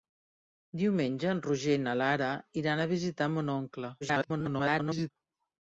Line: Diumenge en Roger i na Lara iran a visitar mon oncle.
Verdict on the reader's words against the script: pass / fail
fail